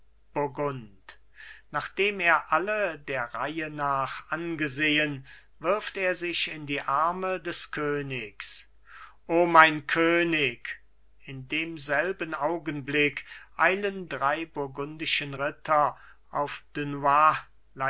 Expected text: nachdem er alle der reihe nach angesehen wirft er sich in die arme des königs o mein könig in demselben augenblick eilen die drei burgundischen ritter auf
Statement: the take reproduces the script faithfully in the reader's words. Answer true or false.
false